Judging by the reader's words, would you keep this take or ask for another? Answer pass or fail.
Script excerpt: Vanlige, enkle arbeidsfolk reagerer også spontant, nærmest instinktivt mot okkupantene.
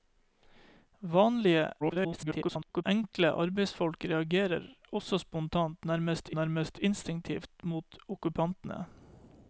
fail